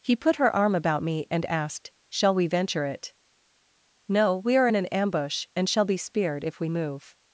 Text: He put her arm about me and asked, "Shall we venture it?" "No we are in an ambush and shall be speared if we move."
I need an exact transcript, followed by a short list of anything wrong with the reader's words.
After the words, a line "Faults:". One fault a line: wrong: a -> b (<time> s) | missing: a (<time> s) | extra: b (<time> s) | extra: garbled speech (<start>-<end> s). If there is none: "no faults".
He put her arm about me and asked, "Shall we venture it?" "No we are in an ambush and shall be speared if we move."
Faults:
no faults